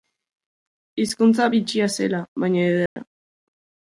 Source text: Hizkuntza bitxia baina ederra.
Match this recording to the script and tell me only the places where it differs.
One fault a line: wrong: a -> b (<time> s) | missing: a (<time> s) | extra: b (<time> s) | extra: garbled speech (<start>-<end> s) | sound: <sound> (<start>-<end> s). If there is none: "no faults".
extra: zela (2.0 s)
sound: dropout (2.9-3.0 s)